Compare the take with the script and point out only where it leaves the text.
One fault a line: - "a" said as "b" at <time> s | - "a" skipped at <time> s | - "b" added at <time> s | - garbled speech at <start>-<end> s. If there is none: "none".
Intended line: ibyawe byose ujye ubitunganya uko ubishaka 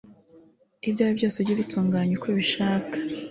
none